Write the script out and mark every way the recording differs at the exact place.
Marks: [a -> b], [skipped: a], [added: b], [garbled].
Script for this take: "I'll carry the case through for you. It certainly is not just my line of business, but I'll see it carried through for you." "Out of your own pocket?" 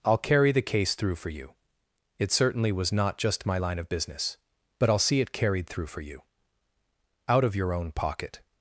"I'll carry the case through for you. It certainly [is -> was] not just my line of business, but I'll see it carried through for you." "Out of your own pocket?"